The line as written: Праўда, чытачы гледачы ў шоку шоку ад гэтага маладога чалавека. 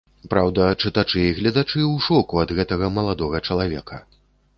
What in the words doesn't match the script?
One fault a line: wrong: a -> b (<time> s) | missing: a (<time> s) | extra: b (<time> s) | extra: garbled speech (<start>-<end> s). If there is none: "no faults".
extra: і (1.2 s)
missing: шоку (2.4 s)